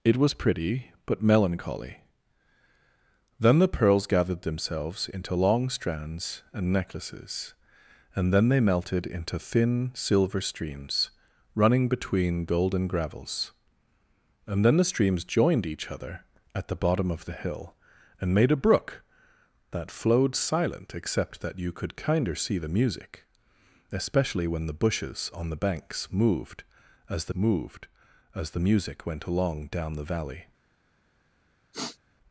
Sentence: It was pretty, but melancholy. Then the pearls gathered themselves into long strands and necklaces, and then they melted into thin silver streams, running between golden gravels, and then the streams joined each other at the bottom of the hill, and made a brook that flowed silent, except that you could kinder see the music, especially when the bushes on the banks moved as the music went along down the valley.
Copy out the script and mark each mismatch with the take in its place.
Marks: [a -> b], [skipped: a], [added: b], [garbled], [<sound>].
It was pretty, but melancholy. Then the pearls gathered themselves into long strands and necklaces, and then they melted into thin silver streams, running between golden gravels, and then the streams joined each other at the bottom of the hill, and made a brook that flowed silent, except that you could kinder see the music, especially when the bushes on the banks moved as the [added: moved as the] music went along down the valley. [sniff]